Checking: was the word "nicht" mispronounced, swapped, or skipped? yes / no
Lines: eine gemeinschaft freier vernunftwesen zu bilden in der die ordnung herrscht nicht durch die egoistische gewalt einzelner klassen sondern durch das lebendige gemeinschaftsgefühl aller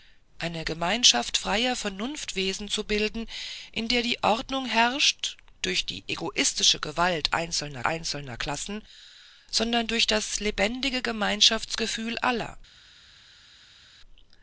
yes